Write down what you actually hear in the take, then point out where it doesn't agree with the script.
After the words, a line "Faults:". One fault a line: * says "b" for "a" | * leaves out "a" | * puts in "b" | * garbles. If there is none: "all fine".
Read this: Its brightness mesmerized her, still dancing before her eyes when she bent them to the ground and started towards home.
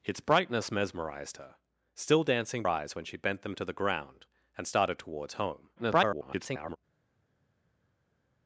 Its brightness mesmerized her, still dancing eyes when she bent them to the ground and started towards home. [garbled]
Faults:
* leaves out "before her"
* garbles